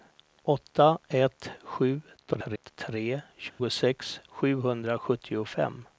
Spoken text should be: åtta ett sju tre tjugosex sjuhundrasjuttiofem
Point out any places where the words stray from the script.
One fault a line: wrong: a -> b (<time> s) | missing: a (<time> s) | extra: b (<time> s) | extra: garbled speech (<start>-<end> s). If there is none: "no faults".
extra: garbled speech (2.2-2.7 s)